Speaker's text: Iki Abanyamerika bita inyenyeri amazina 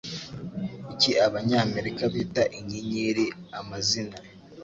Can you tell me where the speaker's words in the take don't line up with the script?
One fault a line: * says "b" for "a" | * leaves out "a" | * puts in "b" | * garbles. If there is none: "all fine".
all fine